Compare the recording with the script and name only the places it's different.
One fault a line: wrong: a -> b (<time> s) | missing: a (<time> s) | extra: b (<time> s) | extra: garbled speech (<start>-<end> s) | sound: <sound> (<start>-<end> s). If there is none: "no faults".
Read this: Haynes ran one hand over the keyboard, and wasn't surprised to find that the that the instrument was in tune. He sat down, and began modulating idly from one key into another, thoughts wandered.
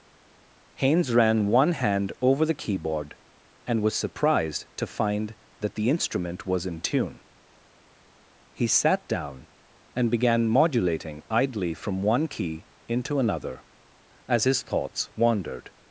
wrong: wasn't -> was (3.8 s)
missing: that the (5.9 s)
extra: as his (14.3 s)